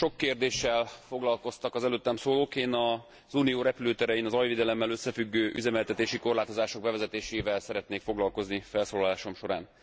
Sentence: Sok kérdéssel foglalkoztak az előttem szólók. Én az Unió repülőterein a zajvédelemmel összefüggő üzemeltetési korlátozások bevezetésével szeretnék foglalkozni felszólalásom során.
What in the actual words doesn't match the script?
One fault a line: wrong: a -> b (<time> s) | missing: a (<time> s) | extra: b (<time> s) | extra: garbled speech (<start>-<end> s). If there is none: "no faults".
no faults